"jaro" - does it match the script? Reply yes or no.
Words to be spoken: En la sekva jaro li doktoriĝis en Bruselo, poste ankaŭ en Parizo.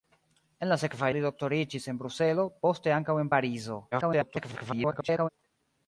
no